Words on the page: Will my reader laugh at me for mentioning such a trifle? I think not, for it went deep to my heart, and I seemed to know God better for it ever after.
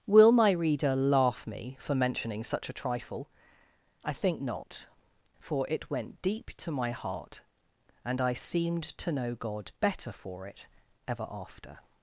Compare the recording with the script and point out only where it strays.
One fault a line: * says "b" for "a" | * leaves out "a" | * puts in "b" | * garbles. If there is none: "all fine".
* leaves out "at"